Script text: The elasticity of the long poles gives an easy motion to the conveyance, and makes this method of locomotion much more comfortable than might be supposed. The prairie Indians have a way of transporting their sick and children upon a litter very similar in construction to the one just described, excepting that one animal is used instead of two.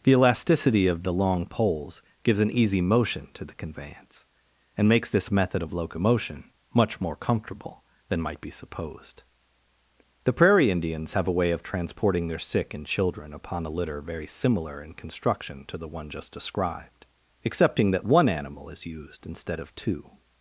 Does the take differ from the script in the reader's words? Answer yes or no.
no